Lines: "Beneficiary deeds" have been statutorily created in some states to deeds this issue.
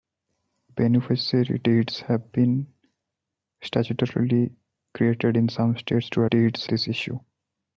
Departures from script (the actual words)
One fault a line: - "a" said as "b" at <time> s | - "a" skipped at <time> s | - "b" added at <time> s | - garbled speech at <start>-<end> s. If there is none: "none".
none